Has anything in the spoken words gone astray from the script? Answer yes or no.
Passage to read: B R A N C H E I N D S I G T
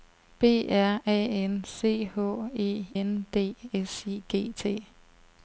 yes